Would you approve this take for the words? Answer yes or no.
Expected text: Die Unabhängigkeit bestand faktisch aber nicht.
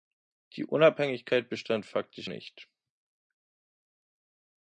no